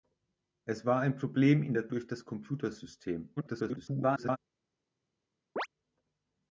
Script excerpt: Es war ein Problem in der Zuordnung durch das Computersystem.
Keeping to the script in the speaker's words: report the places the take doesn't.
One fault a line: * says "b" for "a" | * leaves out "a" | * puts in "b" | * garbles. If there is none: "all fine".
* leaves out "Zuordnung"
* garbles